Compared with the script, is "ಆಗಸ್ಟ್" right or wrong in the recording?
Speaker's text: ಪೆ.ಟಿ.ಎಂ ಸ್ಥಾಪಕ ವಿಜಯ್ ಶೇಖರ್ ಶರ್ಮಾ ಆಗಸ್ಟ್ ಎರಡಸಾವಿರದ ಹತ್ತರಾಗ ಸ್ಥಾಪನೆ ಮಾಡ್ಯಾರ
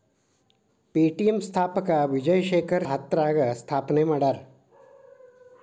wrong